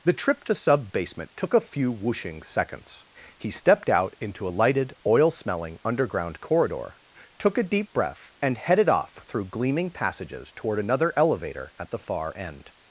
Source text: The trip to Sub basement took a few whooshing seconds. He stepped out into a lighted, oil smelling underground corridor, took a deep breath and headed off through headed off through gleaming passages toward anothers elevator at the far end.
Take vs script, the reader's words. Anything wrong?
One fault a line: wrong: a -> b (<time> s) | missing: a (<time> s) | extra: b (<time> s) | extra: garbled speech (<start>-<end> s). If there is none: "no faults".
missing: headed off through (9.5 s)
wrong: anothers -> another (10.8 s)